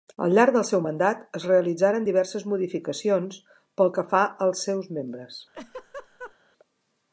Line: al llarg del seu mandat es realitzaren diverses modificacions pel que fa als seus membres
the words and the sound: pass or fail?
fail